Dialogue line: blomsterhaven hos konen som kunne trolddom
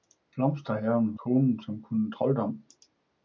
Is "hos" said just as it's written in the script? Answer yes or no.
no